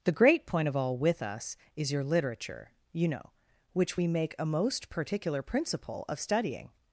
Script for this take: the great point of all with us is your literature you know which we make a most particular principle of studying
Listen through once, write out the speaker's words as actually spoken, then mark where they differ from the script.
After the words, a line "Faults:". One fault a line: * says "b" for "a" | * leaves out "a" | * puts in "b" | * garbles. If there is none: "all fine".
the great point of all with us is your literature you know which we make a most particular principle of studying
Faults:
all fine